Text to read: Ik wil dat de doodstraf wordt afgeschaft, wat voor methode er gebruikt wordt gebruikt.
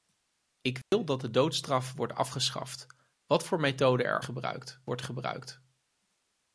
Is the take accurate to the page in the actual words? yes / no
yes